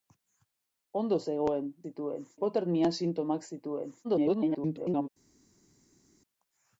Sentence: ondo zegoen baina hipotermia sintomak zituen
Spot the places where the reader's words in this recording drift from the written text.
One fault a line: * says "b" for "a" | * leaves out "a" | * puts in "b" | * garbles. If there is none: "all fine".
* says "zituen" for "baina"
* garbles